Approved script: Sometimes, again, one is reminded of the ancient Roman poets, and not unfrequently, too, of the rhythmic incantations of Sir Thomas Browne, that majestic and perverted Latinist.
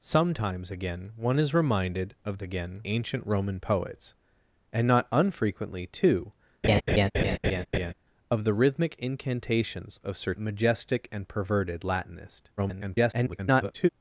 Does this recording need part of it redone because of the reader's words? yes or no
yes